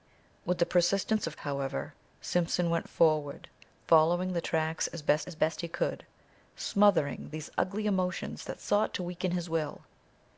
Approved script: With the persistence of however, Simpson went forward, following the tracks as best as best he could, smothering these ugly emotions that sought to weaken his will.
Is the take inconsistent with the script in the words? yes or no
no